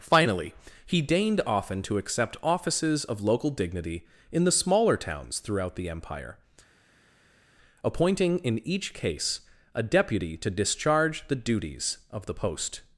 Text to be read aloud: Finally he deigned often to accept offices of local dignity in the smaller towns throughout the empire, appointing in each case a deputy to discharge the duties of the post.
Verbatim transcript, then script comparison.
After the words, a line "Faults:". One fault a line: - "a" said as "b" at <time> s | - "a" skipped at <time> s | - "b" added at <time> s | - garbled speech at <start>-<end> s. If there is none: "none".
Finally he deigned often to accept offices of local dignity in the smaller towns throughout the empire, appointing in each case a deputy to discharge the duties of the post.
Faults:
none